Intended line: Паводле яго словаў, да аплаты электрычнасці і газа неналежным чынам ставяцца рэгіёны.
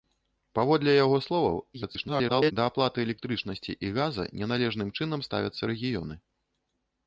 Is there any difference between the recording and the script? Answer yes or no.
yes